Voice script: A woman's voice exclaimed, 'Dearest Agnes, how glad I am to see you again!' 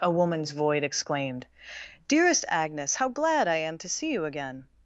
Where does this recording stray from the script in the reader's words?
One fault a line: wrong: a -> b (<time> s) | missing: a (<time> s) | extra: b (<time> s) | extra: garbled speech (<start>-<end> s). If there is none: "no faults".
wrong: voice -> void (0.5 s)